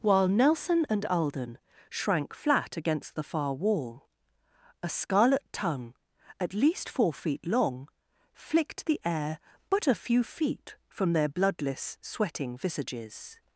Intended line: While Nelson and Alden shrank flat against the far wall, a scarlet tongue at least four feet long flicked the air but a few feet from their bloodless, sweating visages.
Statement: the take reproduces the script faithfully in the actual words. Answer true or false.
true